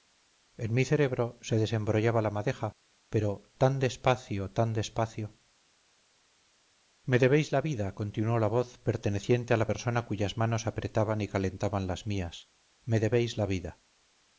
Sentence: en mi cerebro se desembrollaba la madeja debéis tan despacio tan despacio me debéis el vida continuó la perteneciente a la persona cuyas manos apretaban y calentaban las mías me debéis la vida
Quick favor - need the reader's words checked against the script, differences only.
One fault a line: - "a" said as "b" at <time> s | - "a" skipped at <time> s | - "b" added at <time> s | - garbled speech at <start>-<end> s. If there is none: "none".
- "debéis" said as "pero" at 3.1 s
- "el" said as "la" at 7.5 s
- "voz" added at 8.5 s